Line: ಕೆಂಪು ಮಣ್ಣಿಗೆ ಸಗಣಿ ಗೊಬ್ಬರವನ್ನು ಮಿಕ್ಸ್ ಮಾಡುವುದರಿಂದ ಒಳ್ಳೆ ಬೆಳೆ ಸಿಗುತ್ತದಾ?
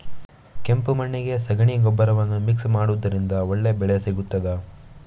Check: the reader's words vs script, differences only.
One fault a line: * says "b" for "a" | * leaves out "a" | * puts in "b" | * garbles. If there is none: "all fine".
all fine